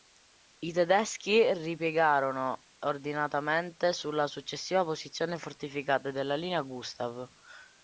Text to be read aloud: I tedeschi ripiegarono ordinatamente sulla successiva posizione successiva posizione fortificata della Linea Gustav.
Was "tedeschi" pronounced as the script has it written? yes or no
yes